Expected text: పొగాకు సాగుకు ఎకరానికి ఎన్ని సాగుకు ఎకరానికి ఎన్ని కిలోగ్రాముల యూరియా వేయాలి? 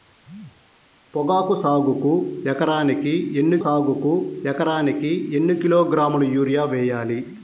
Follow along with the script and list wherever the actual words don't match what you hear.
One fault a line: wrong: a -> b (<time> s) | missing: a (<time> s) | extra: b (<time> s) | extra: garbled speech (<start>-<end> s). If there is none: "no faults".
no faults